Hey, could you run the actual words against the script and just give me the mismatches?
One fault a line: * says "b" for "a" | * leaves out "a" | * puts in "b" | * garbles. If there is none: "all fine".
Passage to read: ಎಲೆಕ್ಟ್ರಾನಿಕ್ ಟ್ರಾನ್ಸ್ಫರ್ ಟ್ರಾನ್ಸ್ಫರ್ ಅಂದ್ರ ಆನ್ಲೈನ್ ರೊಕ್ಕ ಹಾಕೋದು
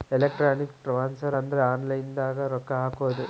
* leaves out "ಟ್ರಾನ್ಸ್ಫರ್"
* puts in "ದಾಗ"